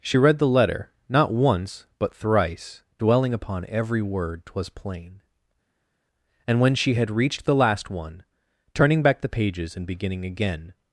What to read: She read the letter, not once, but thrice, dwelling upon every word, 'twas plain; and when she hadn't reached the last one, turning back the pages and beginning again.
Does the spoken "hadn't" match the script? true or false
false